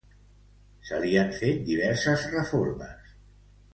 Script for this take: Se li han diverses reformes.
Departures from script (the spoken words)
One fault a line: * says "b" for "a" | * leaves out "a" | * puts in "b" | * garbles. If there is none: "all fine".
* puts in "fet"